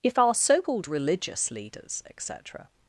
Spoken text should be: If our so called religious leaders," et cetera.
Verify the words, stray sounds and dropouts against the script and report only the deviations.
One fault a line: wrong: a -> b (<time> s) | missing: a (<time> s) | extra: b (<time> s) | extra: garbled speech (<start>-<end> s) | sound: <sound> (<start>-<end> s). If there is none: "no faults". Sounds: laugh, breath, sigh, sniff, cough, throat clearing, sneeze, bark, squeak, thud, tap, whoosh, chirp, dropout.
no faults